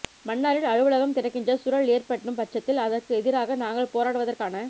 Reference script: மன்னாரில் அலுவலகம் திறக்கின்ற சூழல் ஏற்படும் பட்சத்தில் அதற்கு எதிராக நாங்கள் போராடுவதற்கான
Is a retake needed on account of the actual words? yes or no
no